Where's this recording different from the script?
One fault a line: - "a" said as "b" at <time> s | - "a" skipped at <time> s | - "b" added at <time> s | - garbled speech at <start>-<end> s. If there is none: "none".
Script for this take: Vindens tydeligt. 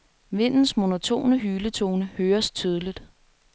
- "monotone hyletone høres" added at 0.8 s